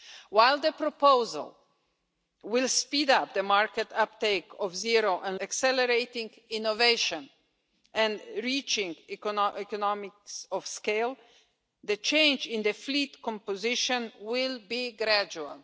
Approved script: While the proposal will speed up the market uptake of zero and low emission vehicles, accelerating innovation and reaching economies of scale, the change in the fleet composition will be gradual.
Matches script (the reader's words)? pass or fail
fail